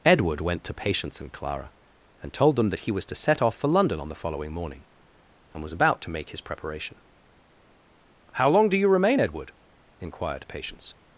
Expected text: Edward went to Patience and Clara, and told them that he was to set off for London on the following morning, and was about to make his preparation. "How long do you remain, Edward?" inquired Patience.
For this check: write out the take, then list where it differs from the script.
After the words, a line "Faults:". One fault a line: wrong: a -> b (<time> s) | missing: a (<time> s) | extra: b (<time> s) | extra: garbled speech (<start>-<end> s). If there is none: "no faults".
Edward went to Patience and Clara, and told them that he was to set off for London on the following morning, and was about to make his preparation. "How long do you remain, Edward?" inquired Patience.
Faults:
no faults